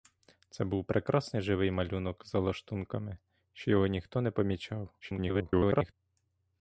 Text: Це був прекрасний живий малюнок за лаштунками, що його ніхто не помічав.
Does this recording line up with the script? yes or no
no